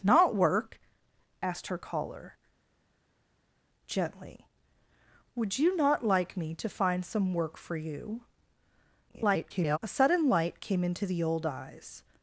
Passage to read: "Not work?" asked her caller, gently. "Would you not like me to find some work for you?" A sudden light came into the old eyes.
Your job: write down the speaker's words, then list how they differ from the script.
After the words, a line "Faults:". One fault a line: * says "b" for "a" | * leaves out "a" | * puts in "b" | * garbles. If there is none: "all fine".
"Not work?" asked her caller, gently. "Would you not like me to find some work for you?" [garbled] A sudden light came into the old eyes.
Faults:
* garbles